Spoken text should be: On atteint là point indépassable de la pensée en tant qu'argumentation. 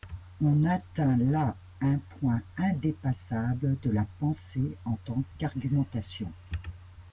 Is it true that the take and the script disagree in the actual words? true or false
true